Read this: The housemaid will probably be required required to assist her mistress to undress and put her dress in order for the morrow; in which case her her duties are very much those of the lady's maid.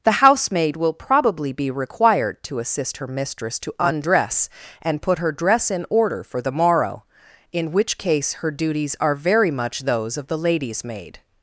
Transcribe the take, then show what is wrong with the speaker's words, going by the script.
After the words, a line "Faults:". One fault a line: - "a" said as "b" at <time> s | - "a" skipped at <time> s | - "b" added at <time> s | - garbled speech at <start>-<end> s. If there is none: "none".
The housemaid will probably be required to assist her mistress to undress and put her dress in order for the morrow; in which case her duties are very much those of the lady's maid.
Faults:
- "required" skipped at 2.4 s
- "her" skipped at 8.5 s